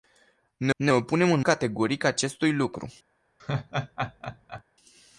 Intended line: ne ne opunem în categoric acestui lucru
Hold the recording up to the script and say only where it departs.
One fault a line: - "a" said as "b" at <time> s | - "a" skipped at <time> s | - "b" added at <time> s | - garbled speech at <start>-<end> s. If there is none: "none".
none